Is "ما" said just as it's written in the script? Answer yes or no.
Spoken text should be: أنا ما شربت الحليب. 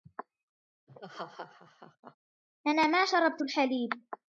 yes